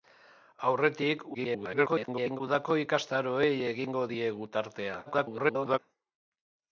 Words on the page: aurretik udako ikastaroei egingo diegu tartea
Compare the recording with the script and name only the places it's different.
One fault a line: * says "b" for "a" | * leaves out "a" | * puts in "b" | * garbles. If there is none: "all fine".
* garbles
* garbles